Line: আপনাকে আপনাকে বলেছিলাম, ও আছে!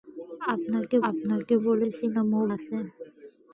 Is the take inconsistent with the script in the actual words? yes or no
no